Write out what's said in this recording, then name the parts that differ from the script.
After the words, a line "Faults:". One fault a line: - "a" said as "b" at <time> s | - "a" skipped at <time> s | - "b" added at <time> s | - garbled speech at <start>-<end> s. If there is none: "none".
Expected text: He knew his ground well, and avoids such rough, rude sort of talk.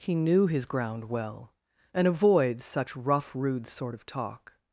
He knew his ground well, and avoids such rough, rude sort of talk.
Faults:
none